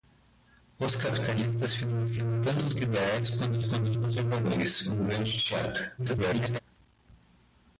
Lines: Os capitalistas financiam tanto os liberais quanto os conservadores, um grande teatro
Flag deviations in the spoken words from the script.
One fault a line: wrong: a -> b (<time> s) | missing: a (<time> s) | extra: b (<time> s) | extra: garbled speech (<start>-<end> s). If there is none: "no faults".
extra: quanto os (3.6 s)
extra: garbled speech (6.0-6.6 s)